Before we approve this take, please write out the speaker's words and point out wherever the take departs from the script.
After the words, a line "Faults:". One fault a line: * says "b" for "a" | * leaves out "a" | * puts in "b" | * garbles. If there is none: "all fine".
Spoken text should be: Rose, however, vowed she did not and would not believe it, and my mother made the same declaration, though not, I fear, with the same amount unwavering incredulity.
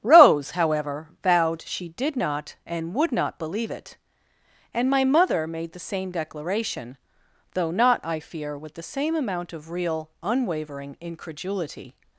Rose, however, vowed she did not and would not believe it, and my mother made the same declaration, though not, I fear, with the same amount of real, unwavering incredulity.
Faults:
* puts in "of real"